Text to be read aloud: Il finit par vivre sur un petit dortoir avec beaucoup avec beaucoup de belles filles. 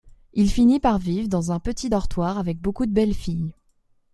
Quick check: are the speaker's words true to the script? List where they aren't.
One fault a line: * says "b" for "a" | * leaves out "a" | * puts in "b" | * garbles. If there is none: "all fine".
* says "dans" for "sur"
* leaves out "avec beaucoup"